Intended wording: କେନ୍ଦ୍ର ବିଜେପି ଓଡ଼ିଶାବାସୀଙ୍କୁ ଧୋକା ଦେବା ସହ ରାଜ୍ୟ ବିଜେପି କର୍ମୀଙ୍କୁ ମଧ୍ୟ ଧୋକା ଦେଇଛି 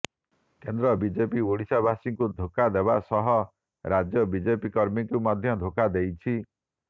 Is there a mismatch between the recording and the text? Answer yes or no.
no